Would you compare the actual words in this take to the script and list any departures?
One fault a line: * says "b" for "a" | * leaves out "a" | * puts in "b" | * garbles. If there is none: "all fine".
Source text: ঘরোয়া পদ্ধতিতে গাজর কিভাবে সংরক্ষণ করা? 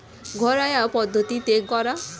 * leaves out "গাজর কিভাবে সংরক্ষণ"